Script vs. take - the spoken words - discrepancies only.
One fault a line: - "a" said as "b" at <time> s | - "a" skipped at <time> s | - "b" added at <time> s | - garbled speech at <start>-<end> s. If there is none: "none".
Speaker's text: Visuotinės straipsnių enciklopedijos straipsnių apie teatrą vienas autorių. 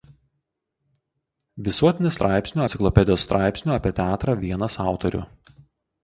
none